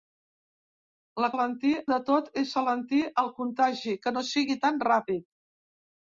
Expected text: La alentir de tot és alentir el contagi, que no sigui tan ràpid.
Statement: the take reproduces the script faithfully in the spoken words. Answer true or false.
true